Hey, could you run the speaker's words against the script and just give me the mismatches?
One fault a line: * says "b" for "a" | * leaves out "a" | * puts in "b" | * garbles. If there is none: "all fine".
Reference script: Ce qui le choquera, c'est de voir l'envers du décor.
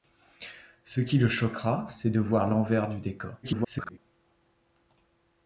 * garbles